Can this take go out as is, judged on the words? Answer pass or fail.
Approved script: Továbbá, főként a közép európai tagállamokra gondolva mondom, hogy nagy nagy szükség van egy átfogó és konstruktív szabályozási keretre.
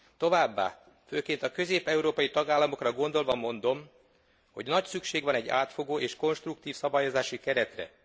fail